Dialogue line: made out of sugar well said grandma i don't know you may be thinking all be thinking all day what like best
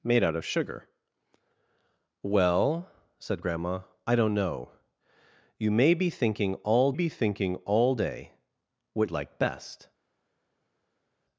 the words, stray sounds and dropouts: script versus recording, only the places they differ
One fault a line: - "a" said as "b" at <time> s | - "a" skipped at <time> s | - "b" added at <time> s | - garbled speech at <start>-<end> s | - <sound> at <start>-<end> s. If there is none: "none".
none